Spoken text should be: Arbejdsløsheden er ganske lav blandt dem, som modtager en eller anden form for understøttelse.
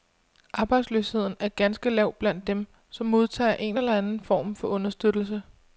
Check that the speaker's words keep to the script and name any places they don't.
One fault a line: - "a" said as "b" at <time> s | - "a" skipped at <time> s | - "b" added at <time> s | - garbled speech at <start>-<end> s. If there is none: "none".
none